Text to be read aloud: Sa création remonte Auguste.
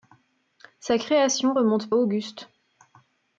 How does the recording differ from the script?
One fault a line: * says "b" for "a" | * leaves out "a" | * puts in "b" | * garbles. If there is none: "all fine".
all fine